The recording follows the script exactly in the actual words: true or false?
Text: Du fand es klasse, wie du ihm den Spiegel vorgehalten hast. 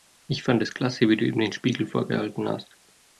false